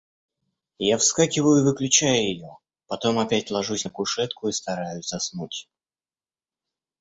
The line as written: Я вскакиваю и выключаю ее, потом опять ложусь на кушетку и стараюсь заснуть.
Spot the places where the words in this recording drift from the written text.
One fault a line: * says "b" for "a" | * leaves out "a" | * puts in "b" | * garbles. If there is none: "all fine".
all fine